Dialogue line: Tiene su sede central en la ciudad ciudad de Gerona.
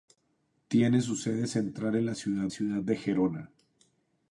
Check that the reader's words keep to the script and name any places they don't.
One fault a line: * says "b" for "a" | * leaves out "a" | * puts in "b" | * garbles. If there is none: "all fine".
all fine